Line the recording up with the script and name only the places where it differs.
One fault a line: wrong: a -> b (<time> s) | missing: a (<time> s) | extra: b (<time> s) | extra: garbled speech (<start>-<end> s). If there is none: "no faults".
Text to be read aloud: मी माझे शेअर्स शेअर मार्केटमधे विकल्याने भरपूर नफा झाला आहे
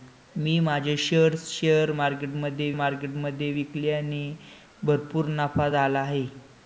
extra: मार्केटमधे (2.7 s)